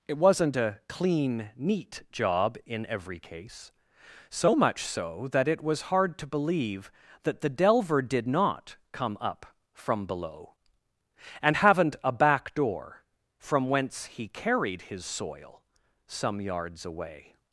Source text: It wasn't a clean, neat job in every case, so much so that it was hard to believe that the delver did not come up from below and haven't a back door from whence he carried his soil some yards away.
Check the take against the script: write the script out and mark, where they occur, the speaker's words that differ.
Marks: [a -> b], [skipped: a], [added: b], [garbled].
It wasn't a clean, neat job in every case, so much so that it was hard to believe that the delver did not come up from below and haven't a back door from whence he carried his soil some yards away.